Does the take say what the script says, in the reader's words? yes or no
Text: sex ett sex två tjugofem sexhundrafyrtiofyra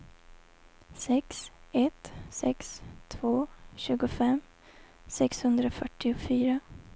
yes